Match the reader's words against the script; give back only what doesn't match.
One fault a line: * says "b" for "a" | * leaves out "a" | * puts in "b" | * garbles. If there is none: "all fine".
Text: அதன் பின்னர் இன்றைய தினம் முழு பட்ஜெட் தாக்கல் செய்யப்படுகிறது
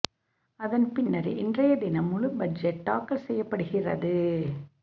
all fine